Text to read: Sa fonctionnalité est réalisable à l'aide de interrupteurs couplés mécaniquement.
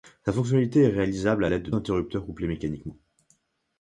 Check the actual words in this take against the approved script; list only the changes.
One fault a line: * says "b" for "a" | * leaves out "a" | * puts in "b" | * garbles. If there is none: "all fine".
all fine